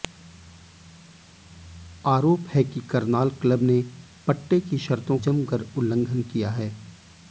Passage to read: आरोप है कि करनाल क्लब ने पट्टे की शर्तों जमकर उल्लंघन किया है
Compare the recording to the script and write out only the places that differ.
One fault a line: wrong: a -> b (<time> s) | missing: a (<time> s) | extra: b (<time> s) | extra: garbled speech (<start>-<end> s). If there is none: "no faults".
no faults